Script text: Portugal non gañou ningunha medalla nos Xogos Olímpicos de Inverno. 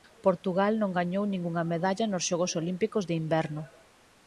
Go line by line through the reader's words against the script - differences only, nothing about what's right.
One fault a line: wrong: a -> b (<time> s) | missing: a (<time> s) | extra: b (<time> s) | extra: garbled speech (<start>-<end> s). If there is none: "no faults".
no faults